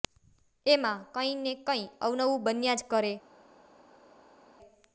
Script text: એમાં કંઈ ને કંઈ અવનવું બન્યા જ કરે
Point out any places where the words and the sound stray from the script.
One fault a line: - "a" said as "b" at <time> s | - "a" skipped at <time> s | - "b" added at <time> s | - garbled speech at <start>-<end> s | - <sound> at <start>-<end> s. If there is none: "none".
none